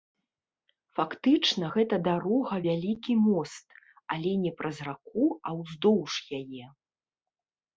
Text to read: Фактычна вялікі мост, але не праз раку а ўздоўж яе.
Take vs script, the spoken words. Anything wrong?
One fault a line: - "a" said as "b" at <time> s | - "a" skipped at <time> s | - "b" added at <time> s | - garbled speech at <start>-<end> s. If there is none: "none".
- "гэта дарога" added at 1.7 s